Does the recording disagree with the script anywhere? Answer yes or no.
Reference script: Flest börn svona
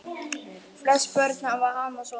yes